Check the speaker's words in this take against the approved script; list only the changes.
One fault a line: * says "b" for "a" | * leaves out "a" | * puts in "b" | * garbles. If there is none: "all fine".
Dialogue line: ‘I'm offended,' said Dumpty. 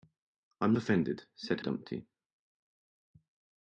all fine